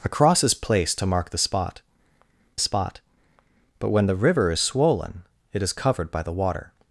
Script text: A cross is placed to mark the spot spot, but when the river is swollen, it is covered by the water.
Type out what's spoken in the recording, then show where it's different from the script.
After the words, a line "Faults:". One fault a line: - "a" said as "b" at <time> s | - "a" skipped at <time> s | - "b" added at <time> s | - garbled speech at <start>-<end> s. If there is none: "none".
A cross is placed to mark the spot spot, but when the river is swollen, it is covered by the water.
Faults:
none